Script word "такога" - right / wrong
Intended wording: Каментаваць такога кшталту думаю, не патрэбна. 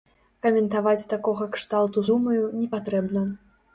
right